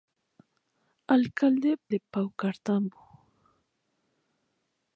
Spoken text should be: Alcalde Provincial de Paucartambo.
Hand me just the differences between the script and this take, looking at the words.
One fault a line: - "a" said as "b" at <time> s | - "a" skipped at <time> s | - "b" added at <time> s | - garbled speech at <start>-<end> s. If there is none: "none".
- "Provincial" skipped at 1.8 s